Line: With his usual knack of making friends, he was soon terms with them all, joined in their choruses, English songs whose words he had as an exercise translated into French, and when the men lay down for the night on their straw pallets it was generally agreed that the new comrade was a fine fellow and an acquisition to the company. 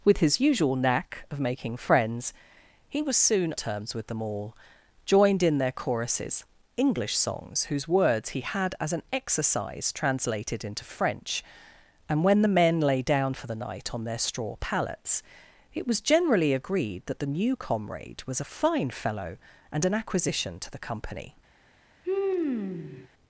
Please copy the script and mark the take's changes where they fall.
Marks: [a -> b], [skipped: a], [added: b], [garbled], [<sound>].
With his usual knack of making friends, he was soon terms with them all, joined in their choruses, English songs whose words he had as an exercise translated into French, and when the men lay down for the night on their straw pallets it was generally agreed that the new comrade was a fine fellow and an acquisition to the company. [sigh]